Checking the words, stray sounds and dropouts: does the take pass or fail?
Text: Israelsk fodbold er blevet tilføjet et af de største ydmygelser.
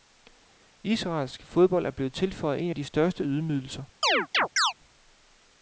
fail